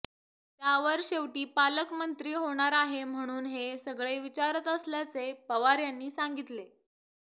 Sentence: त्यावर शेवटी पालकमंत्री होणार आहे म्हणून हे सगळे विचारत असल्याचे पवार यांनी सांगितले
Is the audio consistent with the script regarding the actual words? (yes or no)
yes